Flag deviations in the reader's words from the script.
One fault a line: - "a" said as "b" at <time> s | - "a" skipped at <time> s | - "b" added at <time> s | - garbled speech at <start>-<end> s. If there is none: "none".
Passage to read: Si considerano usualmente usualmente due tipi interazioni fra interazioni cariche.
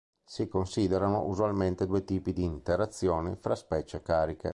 - "usualmente" skipped at 1.8 s
- "di" added at 2.3 s
- "interazioni" said as "specie" at 3.5 s